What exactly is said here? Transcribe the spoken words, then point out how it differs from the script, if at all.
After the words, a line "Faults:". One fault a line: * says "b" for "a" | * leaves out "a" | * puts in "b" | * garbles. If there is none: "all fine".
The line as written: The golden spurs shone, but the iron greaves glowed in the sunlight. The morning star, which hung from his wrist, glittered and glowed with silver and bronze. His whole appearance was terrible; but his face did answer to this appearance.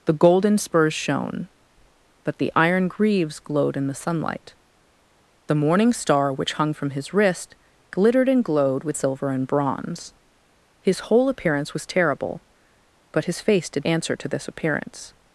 The golden spurs shone, but the iron greaves glowed in the sunlight. The morning star, which hung from his wrist, glittered and glowed with silver and bronze. His whole appearance was terrible; but his face did answer to this appearance.
Faults:
all fine